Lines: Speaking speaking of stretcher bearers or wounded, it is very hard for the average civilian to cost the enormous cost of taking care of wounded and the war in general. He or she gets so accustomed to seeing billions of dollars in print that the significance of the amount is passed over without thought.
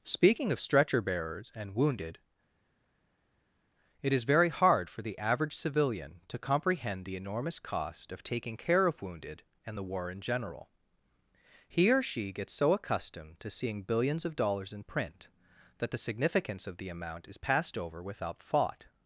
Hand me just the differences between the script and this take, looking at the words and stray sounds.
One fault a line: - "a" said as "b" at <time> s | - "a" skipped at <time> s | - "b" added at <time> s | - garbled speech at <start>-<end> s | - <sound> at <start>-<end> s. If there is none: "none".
- "speaking" skipped at 0.5 s
- "or" said as "and" at 1.5 s
- "cost" said as "comprehend" at 6.4 s